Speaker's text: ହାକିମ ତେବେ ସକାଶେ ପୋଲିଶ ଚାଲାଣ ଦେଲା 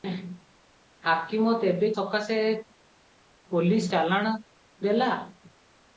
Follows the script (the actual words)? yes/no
yes